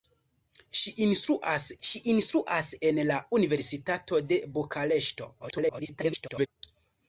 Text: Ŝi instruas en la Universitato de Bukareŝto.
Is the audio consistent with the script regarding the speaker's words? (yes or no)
no